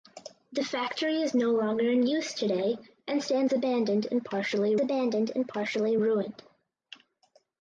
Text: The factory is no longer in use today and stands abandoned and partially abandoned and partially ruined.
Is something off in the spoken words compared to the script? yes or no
no